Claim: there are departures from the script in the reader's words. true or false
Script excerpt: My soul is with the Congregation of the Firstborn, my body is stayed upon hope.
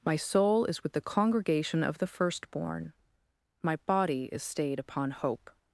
false